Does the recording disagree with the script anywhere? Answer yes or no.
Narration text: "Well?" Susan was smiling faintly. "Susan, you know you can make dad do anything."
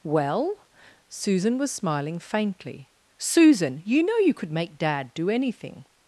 yes